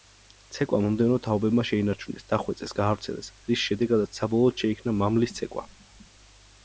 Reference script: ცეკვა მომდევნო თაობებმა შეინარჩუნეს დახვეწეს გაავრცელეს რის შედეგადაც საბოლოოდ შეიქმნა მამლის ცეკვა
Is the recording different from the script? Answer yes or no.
no